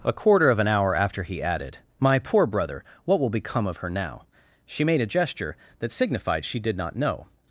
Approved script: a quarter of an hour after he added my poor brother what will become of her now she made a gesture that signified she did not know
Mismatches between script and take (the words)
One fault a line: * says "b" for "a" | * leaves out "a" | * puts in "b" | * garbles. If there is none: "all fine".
all fine